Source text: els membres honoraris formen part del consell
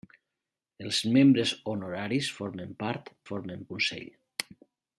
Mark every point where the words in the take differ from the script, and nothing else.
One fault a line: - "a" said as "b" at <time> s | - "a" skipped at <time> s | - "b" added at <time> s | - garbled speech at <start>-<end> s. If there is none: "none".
- "del" said as "formen" at 3.3 s